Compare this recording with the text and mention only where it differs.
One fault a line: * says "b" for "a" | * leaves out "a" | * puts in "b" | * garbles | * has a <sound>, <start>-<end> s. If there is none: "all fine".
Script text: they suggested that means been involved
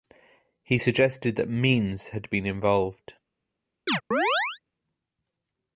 * says "he" for "they"
* puts in "had"
* has a chirp, 3.9-4.6 s